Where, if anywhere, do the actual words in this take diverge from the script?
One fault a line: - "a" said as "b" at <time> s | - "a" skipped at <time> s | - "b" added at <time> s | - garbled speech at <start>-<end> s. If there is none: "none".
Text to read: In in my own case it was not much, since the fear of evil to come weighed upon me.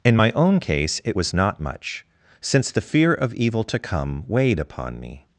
- "in" skipped at 0.2 s